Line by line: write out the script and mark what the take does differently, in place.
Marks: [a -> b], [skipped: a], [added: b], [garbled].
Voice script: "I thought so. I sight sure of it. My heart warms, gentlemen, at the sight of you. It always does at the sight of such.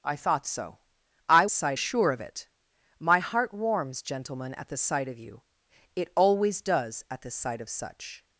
"I thought so. I sight sure of it. My heart warms, gentlemen, at the sight of you. It always does at the sight of such.